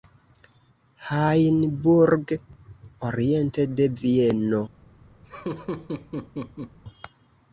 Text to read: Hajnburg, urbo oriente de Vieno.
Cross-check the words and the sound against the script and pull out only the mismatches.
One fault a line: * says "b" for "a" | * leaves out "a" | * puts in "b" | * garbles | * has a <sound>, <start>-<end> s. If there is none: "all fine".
* leaves out "urbo"
* has a laugh, 5.2-6.8 s